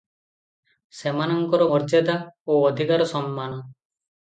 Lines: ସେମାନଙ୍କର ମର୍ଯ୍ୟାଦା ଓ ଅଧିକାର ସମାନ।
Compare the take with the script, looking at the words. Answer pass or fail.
pass